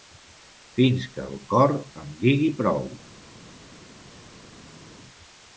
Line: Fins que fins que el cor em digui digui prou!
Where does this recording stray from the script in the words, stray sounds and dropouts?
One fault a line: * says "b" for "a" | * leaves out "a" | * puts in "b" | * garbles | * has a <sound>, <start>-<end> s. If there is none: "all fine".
* leaves out "fins que"
* leaves out "digui"